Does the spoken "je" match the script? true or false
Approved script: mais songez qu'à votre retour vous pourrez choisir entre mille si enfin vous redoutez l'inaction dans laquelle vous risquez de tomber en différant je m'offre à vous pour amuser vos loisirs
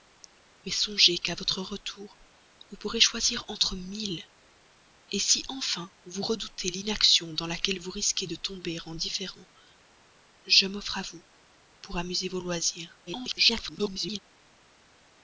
true